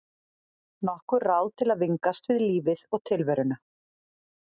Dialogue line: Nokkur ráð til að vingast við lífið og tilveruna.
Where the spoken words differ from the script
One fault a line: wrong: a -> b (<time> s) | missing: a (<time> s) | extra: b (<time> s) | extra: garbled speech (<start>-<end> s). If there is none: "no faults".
no faults